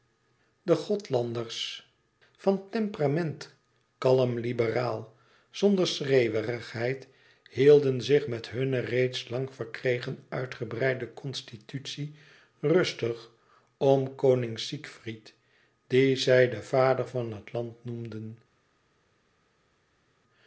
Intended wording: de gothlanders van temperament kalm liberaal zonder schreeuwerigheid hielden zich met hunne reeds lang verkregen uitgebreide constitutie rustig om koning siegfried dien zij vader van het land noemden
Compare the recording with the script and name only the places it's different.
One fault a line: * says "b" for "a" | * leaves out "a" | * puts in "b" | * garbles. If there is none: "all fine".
* puts in "den"